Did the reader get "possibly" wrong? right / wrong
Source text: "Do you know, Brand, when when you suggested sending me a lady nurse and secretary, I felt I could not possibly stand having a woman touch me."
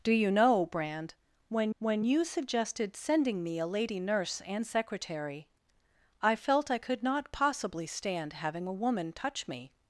right